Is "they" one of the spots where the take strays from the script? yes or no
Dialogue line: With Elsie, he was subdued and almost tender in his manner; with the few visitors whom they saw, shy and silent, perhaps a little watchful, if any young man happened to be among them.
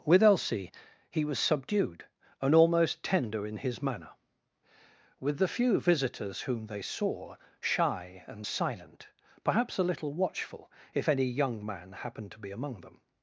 no